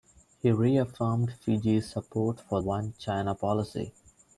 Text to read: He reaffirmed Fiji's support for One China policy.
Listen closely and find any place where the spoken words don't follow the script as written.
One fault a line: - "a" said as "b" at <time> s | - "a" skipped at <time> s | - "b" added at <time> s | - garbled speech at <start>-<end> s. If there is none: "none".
none